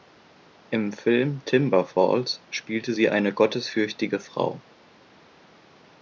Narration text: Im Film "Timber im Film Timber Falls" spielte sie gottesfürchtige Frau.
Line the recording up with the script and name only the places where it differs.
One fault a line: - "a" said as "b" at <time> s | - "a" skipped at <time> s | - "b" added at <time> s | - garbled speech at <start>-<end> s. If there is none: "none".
- "im Film Timber" skipped at 1.9 s
- "eine" added at 3.1 s